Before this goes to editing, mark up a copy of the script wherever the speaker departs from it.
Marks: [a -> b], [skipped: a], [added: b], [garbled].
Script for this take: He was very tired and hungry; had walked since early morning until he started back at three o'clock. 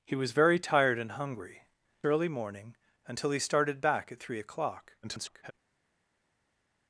He was very tired and hungry; [skipped: had walked since] early morning until he started back at three o'clock. [garbled]